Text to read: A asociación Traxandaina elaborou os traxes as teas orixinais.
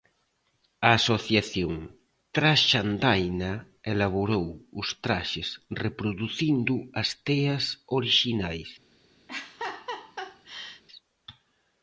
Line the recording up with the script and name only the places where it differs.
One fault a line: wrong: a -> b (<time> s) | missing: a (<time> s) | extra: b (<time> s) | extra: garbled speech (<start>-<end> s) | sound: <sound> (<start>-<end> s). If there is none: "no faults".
extra: reproducindo (5.8 s)
sound: laugh (9.3-10.8 s)